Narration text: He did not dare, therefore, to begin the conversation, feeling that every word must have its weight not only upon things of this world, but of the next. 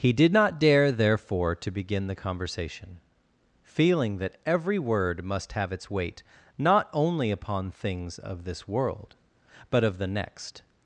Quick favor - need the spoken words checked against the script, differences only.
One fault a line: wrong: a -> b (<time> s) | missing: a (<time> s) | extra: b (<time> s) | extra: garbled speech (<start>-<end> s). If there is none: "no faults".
no faults